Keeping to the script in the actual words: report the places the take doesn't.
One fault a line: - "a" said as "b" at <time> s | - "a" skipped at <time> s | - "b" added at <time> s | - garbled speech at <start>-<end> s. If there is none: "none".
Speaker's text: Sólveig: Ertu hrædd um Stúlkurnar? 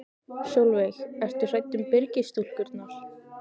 - "Byrgis" added at 1.9 s